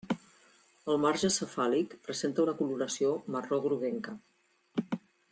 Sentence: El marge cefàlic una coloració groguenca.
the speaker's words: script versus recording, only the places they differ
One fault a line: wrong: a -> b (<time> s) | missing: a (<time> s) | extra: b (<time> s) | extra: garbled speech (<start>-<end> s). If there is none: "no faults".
extra: presenta (2.1 s)
extra: marró (3.4 s)